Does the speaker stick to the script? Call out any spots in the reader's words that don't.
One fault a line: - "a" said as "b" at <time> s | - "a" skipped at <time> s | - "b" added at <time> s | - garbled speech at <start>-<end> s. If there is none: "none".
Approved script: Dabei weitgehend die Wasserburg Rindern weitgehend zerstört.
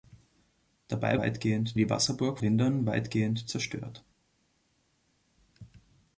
none